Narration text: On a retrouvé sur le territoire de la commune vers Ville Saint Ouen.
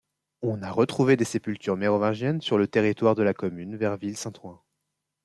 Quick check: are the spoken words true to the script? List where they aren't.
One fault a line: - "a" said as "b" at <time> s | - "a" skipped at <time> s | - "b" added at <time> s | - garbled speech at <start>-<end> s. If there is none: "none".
- "des sépultures mérovingiennes" added at 1.1 s